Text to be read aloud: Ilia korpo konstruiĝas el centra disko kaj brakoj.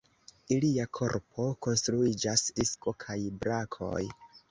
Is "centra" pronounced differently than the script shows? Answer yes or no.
yes